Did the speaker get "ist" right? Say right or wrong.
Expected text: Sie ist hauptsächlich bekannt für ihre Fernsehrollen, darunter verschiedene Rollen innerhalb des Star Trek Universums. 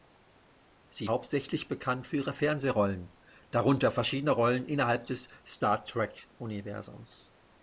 wrong